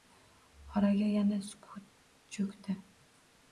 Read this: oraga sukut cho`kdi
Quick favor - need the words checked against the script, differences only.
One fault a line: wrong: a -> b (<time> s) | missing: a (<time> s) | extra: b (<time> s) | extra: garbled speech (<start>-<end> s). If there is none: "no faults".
extra: yana (1.2 s)